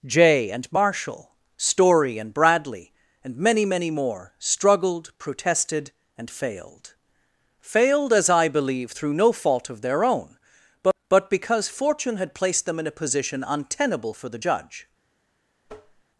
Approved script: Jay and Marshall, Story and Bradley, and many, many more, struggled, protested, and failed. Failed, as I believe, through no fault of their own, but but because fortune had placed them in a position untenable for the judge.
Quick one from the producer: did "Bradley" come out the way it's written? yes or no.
yes